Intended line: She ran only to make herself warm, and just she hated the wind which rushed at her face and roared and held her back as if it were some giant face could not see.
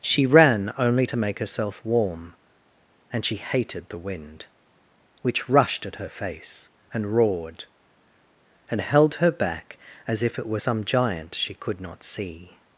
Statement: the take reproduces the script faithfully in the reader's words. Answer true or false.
false